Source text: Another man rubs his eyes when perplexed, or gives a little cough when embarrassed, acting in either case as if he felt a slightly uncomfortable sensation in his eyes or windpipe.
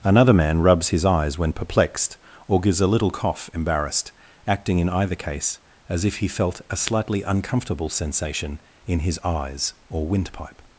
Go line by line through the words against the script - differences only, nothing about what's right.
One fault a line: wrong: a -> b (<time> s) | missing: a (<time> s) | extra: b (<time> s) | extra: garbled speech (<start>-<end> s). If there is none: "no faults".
missing: when (3.5 s)